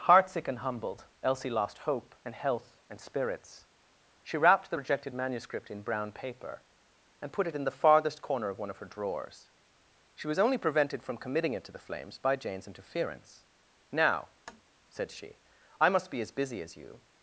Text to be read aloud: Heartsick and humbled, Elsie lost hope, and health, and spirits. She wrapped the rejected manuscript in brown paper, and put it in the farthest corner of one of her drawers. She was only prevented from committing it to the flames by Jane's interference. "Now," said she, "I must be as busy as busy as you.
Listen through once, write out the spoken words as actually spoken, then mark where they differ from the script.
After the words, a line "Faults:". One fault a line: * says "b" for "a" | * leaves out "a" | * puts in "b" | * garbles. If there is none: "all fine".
Heartsick and humbled, Elsie lost hope, and health, and spirits. She wrapped the rejected manuscript in brown paper, and put it in the farthest corner of one of her drawers. She was only prevented from committing it to the flames by Jane's interference. "Now," said she, "I must be as busy as you.
Faults:
* leaves out "busy as"